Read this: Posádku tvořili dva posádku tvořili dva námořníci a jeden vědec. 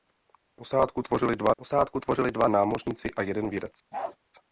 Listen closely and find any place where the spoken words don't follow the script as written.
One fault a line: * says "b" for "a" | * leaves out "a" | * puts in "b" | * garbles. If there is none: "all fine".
all fine